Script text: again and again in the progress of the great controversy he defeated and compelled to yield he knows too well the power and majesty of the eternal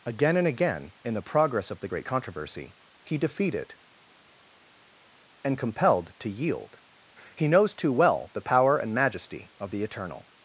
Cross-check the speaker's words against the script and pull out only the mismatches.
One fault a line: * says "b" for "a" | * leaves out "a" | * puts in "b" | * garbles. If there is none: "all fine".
all fine